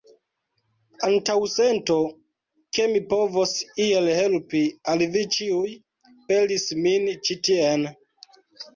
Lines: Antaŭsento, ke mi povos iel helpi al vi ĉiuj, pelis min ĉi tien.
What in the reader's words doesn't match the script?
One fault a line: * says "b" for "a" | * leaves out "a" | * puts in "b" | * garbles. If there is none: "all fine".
all fine